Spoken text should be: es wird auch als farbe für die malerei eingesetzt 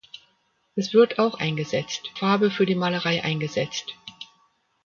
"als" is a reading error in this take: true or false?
true